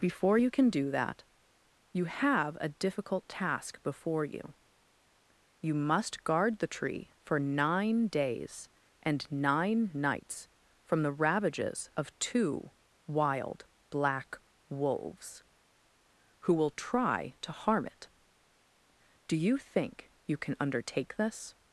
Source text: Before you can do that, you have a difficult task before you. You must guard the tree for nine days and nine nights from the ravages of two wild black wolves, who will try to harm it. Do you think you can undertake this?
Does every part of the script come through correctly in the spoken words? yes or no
yes